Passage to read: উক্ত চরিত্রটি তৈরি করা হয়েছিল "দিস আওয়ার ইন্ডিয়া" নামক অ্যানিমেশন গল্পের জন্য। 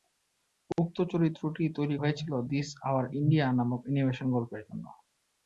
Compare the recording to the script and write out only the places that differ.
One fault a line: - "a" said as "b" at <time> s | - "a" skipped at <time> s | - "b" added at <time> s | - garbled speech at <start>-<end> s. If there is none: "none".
- "করা" skipped at 1.9 s